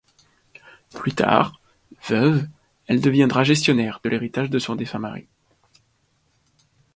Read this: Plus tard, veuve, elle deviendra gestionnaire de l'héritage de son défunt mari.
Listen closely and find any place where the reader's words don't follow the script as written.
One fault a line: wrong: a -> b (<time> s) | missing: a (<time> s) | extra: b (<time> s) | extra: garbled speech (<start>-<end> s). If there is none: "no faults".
no faults